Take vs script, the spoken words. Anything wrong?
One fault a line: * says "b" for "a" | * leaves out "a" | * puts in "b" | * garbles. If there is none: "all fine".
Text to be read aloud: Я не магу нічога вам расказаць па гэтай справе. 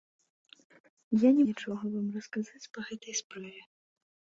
* leaves out "магу"